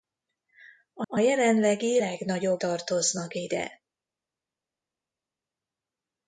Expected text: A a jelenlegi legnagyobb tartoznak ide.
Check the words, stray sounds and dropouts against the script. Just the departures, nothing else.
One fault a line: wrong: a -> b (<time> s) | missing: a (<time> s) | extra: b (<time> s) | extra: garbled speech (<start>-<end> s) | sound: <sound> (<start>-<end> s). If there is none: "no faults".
no faults